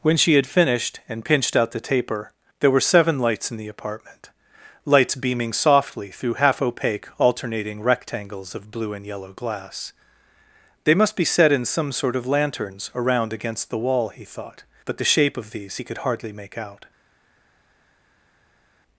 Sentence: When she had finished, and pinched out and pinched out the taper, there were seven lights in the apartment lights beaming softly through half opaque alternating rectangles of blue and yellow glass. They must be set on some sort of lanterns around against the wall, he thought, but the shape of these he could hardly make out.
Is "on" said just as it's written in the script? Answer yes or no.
no